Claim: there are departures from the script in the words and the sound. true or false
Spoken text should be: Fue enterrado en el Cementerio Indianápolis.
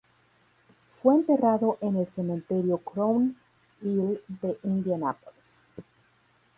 true